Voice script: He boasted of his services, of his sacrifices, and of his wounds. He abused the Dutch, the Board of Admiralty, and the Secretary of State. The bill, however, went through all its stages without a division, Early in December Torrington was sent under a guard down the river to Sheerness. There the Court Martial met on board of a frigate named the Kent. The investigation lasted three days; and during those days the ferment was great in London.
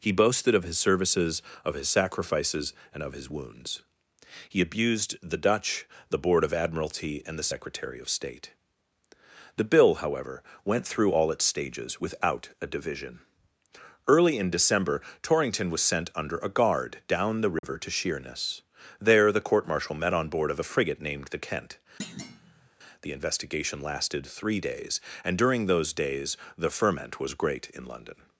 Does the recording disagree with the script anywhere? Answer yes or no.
no